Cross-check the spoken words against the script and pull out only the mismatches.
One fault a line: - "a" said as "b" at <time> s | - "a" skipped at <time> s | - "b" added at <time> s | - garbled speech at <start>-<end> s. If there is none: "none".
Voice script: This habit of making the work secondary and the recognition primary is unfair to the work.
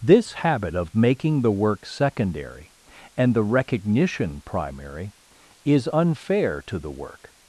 none